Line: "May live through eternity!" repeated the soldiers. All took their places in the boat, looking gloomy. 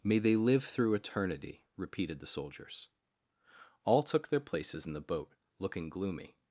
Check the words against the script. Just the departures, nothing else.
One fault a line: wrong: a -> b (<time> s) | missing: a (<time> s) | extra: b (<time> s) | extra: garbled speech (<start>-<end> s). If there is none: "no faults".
extra: they (0.2 s)